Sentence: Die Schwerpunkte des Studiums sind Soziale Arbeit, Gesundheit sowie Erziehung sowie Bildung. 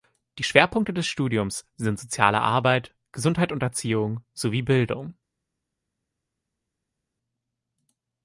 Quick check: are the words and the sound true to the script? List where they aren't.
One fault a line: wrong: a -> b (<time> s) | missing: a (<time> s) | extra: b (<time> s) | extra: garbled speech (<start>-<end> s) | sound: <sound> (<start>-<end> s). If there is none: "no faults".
wrong: sowie -> und (3.5 s)